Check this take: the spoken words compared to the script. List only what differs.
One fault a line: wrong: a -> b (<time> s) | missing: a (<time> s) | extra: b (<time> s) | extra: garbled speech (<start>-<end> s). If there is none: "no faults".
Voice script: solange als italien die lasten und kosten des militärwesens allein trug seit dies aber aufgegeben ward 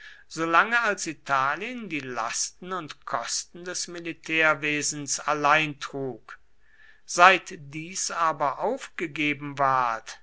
no faults